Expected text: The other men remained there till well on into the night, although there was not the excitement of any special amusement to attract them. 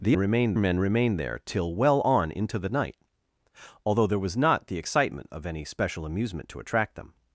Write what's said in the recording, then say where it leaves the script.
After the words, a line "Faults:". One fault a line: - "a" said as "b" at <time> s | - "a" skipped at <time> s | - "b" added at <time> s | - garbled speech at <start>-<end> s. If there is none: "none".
The remained men remained there till well on into the night, although there was not the excitement of any special amusement to attract them.
Faults:
- "other" said as "remained" at 0.2 s